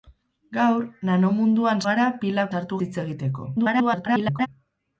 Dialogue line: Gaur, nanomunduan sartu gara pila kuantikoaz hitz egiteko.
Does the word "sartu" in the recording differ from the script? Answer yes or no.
yes